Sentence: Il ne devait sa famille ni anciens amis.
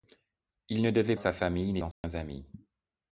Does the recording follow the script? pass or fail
pass